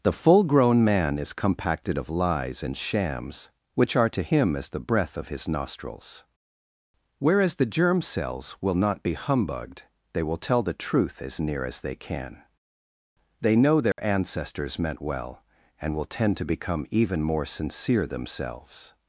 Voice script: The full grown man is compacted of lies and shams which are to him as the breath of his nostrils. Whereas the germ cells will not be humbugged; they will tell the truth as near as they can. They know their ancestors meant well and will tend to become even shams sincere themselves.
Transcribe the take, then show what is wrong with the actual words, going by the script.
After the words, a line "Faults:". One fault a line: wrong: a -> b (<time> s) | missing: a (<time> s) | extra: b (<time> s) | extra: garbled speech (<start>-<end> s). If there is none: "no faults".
The full grown man is compacted of lies and shams which are to him as the breath of his nostrils. Whereas the germ cells will not be humbugged; they will tell the truth as near as they can. They know their ancestors meant well and will tend to become even more sincere themselves.
Faults:
wrong: shams -> more (17.2 s)